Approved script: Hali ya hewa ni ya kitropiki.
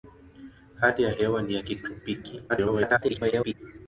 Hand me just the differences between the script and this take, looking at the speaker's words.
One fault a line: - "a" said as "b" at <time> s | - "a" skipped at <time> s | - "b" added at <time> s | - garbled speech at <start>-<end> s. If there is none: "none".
- garbled speech at 2.5-3.5 s